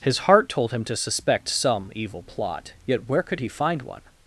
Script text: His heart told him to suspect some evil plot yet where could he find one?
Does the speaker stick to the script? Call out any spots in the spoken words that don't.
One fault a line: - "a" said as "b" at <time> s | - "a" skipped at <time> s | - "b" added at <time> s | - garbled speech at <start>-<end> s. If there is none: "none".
none